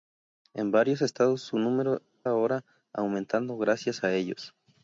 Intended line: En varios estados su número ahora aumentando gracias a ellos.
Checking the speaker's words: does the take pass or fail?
pass